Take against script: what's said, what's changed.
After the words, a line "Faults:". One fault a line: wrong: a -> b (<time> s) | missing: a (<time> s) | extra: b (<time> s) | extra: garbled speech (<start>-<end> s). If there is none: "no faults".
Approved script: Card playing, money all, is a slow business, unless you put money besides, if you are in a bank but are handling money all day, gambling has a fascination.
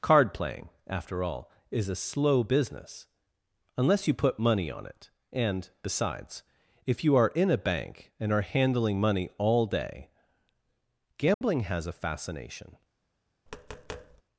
Card playing, after all, is a slow business, unless you put money on it, and, besides, if you are in a bank and are handling money all day, gambling has a fascination.
Faults:
wrong: money -> after (0.8 s)
extra: on it and (4.7 s)
wrong: but -> and (8.2 s)